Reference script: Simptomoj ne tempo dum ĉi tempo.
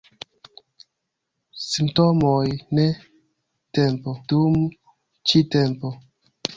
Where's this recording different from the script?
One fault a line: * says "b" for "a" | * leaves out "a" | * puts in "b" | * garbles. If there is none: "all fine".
all fine